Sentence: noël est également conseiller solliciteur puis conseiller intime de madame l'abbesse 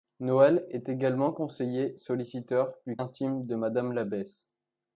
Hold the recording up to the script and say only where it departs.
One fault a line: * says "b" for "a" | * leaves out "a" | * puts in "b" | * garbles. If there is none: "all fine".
* leaves out "conseiller"